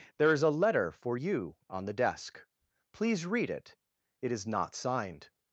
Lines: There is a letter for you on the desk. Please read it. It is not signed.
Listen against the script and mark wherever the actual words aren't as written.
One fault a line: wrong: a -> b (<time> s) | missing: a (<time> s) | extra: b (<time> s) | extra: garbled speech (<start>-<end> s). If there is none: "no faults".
no faults